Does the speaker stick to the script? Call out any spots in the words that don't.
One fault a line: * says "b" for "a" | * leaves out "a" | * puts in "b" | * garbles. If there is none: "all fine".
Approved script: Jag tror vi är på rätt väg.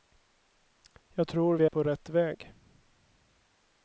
* leaves out "är"